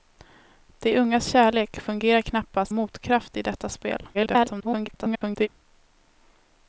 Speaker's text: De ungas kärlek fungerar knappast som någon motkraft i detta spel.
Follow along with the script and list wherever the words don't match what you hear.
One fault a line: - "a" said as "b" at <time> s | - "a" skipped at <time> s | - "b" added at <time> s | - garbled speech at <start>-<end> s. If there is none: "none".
- "som någon" skipped at 2.7 s
- garbled speech at 4.1-5.5 s